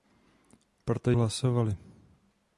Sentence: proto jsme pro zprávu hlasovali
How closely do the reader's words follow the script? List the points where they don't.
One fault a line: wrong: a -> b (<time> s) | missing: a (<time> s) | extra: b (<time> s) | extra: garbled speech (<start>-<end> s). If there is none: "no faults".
missing: jsme pro zprávu (1.1 s)